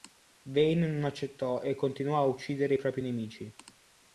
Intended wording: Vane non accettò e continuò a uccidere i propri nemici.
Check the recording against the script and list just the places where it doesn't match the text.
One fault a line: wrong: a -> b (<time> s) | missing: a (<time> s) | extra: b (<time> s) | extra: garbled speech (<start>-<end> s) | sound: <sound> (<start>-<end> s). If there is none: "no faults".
no faults